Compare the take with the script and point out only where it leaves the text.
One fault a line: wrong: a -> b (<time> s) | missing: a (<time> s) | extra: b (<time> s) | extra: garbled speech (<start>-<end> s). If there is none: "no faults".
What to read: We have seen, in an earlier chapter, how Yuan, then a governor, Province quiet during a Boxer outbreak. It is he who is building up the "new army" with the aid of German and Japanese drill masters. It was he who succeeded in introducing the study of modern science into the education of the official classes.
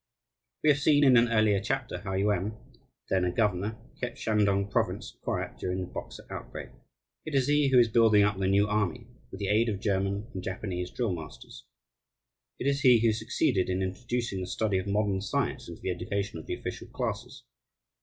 extra: kept Shantung (4.0 s)
wrong: a -> the (5.8 s)
wrong: was -> is (12.7 s)